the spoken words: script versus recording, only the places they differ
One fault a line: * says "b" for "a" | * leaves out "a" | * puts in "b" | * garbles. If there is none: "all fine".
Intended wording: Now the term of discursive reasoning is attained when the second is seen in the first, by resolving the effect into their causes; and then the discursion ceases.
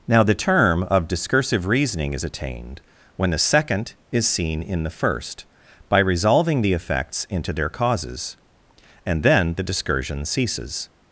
* says "effects" for "effect"